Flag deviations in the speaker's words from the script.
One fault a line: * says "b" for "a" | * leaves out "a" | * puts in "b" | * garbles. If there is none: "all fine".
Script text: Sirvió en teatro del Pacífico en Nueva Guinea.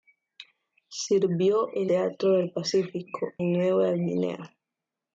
all fine